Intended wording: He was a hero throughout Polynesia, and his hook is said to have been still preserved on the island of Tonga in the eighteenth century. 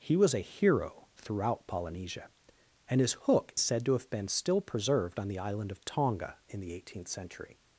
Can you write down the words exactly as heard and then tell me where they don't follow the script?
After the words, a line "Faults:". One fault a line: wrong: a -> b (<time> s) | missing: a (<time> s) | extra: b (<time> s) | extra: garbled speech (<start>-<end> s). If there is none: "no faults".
He was a hero throughout Polynesia, and his hook said to have been still preserved on the island of Tonga in the eighteenth century.
Faults:
missing: is (3.5 s)